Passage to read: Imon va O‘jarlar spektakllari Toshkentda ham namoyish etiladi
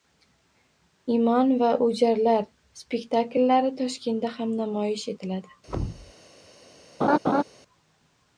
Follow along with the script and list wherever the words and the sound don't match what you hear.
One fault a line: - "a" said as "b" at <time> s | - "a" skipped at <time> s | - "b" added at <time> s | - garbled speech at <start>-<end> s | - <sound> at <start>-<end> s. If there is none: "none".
- thud at 5.7-6.1 s
- laugh at 7.0-7.4 s